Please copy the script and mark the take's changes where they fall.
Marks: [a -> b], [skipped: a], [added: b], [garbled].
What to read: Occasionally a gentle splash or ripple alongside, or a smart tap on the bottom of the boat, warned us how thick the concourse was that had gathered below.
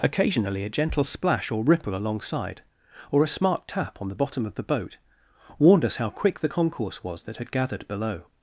Occasionally a gentle splash or ripple alongside, or a smart tap on the bottom of the boat, warned us how [thick -> quick] the concourse was that had gathered below.